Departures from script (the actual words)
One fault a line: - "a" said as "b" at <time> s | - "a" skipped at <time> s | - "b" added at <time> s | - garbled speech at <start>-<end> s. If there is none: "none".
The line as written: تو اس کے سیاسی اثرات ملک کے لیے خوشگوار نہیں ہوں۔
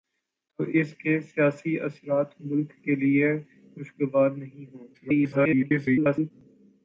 - garbled speech at 4.9-6.3 s